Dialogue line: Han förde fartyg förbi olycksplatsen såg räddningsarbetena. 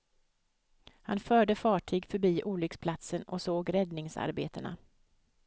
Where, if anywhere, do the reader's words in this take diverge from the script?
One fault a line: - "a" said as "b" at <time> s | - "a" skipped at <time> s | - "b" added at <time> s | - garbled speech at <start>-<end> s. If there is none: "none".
- "och" added at 3.2 s